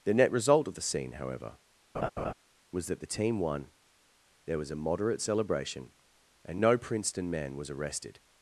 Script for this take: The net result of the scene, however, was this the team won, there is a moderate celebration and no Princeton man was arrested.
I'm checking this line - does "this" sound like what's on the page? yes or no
no